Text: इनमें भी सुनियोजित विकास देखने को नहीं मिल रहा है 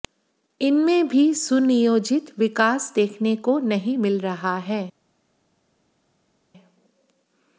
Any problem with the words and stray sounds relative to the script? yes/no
no